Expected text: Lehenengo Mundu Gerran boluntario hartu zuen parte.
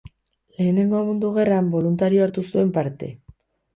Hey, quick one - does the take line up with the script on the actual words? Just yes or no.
yes